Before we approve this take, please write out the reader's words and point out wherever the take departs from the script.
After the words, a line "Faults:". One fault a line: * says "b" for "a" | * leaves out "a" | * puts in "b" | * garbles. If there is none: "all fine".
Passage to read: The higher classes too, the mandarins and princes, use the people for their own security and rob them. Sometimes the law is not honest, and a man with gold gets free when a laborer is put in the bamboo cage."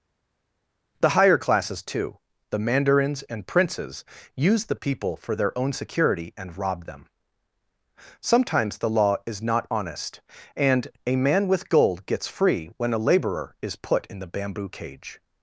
The higher classes too, the mandarins and princes, use the people for their own security and rob them. Sometimes the law is not honest, and a man with gold gets free when a laborer is put in the bamboo cage."
Faults:
all fine